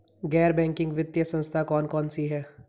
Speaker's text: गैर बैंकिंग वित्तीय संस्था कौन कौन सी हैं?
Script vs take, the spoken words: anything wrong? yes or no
no